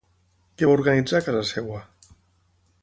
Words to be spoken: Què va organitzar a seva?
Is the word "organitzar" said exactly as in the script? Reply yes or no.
yes